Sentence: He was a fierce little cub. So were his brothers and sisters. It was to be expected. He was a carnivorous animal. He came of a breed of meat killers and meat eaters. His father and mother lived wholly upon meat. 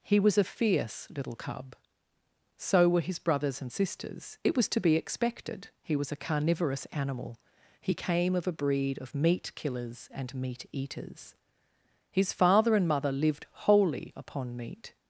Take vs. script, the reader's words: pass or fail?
pass